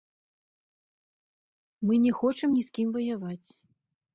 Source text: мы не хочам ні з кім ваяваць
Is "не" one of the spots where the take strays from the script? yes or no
no